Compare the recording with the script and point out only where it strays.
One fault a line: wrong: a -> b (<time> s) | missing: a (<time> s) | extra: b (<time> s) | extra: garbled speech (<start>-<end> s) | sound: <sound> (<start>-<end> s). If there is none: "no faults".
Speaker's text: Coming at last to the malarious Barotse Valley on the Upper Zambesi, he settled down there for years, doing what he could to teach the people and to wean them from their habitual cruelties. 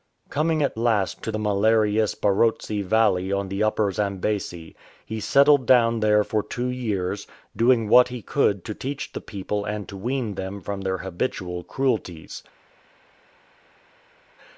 extra: two (6.4 s)